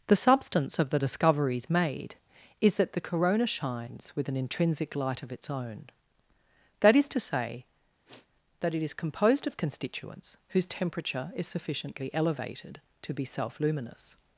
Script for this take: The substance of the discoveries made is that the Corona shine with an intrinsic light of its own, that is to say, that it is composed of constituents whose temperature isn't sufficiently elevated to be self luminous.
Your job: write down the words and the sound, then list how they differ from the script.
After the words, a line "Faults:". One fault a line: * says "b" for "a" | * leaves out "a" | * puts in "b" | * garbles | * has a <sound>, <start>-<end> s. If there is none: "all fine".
The substance of the discoveries made is that the Corona shines with an intrinsic light of its own, that is to say, that it is composed of constituents whose temperature is sufficiently elevated to be self luminous.
Faults:
* says "shines" for "shine"
* has a sniff, 8.1-8.3 s
* says "is" for "isn't"